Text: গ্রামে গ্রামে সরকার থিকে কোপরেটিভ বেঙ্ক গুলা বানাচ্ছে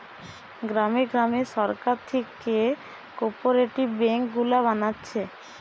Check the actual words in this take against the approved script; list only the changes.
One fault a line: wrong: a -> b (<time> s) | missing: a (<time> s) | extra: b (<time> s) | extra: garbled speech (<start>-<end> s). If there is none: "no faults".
no faults